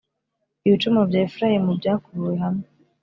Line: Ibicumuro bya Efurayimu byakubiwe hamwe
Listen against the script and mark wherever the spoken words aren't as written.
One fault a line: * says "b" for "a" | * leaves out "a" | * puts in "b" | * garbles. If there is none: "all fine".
all fine